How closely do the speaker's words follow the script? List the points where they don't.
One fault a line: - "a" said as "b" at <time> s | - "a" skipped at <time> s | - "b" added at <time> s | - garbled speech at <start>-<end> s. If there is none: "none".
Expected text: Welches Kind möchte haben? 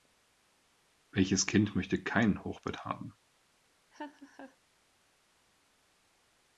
- "kein Hochbett" added at 2.0 s